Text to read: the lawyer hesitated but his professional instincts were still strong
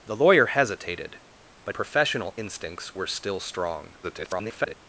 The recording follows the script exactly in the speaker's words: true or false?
false